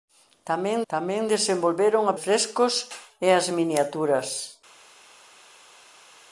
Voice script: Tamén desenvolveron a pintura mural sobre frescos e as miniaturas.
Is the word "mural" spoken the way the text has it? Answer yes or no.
no